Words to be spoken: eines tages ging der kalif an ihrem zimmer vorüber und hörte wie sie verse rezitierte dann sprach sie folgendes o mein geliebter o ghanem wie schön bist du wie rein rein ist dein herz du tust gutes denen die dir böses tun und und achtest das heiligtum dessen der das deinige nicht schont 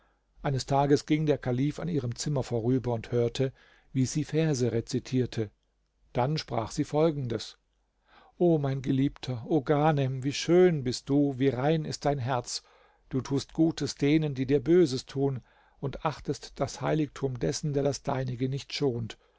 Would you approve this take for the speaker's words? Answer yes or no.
no